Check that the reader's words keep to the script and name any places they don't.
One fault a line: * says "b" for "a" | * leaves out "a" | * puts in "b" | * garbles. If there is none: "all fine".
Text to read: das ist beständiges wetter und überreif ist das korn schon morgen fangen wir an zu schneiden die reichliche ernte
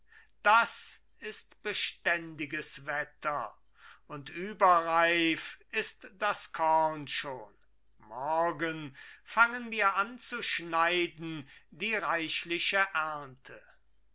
all fine